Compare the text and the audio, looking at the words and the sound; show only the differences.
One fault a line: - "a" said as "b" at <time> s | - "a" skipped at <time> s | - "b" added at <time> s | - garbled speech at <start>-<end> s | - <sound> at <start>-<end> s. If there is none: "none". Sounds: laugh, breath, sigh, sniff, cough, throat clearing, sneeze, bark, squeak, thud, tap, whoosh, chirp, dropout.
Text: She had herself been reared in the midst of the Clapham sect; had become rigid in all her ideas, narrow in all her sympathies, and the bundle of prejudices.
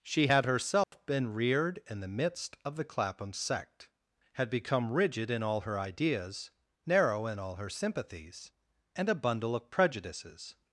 - dropout at 0.8-0.9 s
- "the" said as "a" at 9.1 s